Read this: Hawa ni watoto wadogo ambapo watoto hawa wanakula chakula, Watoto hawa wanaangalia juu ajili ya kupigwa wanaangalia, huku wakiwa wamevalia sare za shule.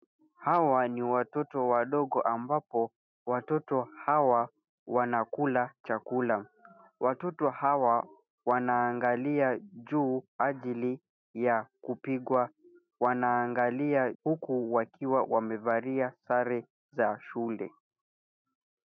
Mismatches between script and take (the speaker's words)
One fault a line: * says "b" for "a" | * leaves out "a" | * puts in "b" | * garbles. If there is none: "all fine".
all fine